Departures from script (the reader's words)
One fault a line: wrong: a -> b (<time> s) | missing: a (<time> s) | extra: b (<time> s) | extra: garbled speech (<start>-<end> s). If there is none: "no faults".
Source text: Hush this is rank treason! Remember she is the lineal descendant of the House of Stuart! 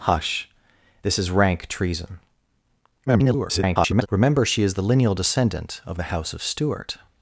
extra: garbled speech (3.1-4.1 s)